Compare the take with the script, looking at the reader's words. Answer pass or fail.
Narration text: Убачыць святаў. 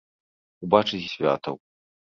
pass